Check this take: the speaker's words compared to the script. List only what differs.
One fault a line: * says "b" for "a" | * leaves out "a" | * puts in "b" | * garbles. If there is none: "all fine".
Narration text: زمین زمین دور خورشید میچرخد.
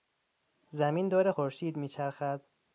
* leaves out "زمین"